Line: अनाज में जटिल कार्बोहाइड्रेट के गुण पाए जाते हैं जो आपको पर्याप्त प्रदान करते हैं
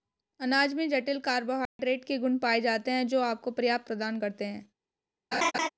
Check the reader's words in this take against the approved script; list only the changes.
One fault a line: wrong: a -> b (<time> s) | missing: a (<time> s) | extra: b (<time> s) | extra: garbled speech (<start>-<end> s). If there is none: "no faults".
no faults